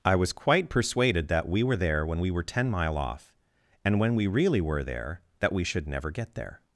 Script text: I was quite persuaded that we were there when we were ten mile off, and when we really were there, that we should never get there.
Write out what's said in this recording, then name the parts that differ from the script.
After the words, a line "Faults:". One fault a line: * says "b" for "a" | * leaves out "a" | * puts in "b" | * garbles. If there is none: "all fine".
I was quite persuaded that we were there when we were ten mile off, and when we really were there, that we should never get there.
Faults:
all fine